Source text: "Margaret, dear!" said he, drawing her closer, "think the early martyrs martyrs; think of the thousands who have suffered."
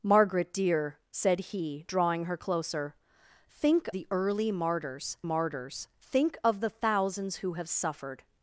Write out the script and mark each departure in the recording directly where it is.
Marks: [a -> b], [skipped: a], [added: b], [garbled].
"Margaret, dear!" said he, drawing her closer, "think the early martyrs martyrs; think of the thousands who have suffered."